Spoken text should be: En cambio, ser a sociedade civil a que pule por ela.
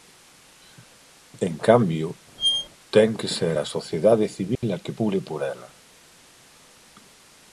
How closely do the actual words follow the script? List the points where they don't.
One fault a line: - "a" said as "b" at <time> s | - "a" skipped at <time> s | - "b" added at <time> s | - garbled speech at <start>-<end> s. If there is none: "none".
- "ten que" added at 2.9 s